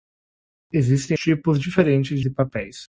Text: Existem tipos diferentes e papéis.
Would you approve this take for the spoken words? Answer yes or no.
yes